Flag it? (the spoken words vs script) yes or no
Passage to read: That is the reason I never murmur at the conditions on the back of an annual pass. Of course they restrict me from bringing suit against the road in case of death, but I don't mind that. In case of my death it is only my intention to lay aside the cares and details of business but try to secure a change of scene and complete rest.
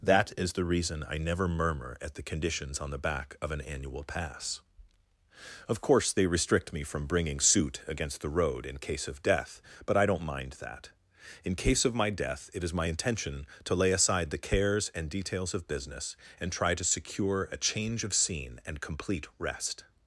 yes